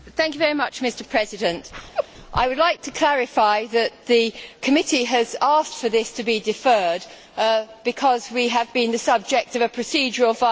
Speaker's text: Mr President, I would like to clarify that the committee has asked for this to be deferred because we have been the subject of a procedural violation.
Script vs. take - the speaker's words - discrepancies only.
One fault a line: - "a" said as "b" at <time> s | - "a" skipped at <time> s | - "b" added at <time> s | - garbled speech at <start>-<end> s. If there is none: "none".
none